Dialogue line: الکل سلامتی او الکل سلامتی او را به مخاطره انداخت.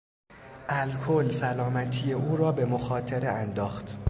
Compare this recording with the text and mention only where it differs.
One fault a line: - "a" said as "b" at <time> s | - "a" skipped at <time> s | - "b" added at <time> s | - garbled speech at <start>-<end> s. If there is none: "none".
- "الکل سلامتی او" skipped at 2.4 s